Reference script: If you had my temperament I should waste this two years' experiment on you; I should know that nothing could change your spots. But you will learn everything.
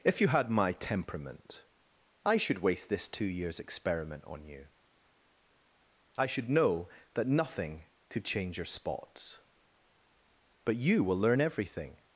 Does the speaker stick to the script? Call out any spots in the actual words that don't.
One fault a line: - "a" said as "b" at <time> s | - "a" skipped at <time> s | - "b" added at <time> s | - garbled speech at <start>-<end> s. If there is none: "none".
none